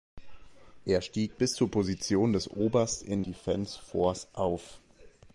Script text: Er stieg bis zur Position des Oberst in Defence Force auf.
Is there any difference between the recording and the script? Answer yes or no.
no